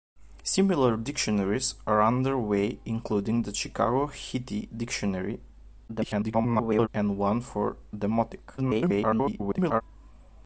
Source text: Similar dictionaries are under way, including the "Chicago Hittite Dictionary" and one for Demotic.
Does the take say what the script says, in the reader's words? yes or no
no